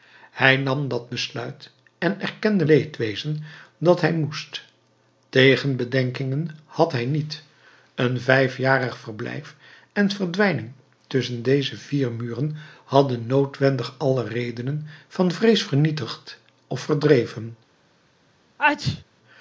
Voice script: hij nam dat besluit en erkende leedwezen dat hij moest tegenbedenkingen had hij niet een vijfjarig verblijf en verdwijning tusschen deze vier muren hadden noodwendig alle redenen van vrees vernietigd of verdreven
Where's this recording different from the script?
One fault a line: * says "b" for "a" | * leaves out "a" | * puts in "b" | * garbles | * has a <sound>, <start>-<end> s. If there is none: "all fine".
* has a sneeze, 18.6-19.0 s